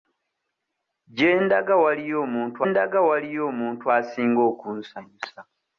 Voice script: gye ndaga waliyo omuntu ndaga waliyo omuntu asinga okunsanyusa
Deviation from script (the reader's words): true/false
false